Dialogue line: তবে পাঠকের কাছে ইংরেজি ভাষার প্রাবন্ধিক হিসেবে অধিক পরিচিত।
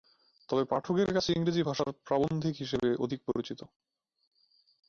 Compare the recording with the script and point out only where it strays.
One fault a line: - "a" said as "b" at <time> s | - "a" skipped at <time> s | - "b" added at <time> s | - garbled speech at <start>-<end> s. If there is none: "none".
none